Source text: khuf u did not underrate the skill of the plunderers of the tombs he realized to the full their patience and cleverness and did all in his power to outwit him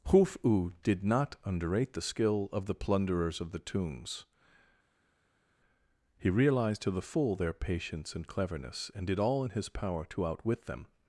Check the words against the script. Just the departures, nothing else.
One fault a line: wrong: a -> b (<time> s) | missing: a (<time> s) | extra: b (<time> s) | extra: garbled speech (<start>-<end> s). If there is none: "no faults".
wrong: him -> them (10.7 s)